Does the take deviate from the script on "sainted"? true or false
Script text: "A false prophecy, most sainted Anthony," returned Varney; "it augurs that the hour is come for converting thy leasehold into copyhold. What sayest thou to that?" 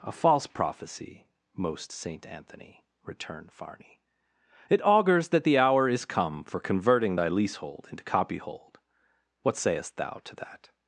true